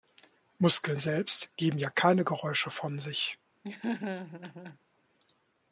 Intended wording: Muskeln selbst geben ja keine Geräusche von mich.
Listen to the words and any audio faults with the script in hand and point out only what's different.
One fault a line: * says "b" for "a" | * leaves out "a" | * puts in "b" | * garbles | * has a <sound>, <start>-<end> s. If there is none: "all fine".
* says "sich" for "mich"
* has a laugh, 3.6-4.8 s